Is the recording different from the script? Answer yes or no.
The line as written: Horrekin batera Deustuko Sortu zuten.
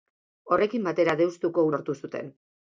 no